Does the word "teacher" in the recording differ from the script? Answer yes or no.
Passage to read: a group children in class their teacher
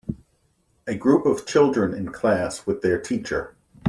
no